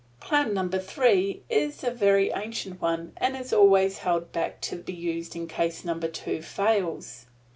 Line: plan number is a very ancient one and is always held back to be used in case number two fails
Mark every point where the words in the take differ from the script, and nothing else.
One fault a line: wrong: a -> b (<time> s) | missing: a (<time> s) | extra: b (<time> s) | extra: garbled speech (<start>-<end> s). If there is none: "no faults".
extra: three (0.8 s)